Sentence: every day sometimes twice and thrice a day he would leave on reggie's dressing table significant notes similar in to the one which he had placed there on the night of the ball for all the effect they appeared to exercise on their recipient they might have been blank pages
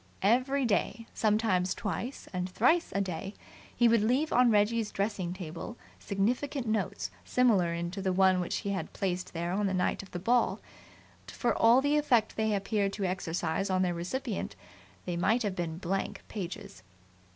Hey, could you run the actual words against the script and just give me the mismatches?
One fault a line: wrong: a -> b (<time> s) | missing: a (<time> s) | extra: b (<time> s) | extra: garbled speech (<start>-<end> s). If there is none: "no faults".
no faults